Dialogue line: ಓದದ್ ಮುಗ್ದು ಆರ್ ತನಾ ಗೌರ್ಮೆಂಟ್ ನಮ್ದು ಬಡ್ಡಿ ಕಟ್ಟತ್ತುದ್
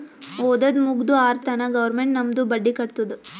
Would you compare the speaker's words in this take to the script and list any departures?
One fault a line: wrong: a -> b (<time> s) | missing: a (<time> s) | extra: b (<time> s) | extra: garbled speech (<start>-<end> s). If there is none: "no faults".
no faults